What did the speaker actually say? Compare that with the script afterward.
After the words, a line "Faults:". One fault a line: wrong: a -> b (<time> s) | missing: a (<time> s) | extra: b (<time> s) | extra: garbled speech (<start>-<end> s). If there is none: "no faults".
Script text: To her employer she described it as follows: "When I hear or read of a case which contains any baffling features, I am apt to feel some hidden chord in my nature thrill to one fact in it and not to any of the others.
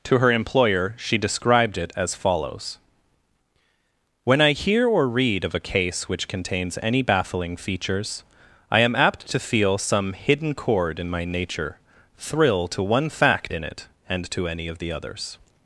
To her employer she described it as follows: "When I hear or read of a case which contains any baffling features, I am apt to feel some hidden chord in my nature thrill to one fact in it and to any of the others.
Faults:
missing: not (14.3 s)